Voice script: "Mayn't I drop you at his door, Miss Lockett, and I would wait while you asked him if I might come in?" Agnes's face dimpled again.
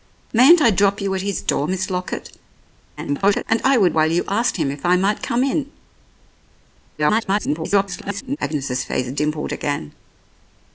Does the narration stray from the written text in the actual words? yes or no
yes